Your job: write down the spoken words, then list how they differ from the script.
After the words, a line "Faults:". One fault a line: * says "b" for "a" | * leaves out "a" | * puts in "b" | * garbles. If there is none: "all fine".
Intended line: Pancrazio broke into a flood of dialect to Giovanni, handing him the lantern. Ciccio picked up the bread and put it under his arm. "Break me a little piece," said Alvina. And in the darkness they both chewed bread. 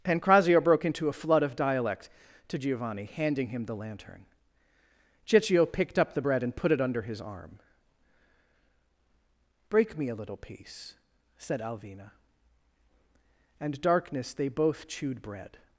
Pancrazio broke into a flood of dialect to Giovanni, handing him the lantern. Ciccio picked up the bread and put it under his arm. "Break me a little piece," said Alvina. And darkness they both chewed bread.
Faults:
* leaves out "in the"